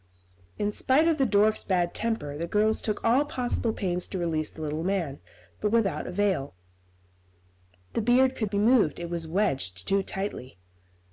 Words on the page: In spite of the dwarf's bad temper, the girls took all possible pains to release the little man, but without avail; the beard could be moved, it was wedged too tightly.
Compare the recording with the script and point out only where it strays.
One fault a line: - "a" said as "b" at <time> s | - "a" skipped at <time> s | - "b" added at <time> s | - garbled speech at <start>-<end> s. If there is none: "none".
none